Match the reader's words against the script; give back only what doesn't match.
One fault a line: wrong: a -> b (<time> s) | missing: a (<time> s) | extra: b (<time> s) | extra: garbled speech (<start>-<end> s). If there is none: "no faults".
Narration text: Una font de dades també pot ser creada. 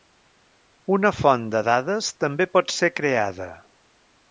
no faults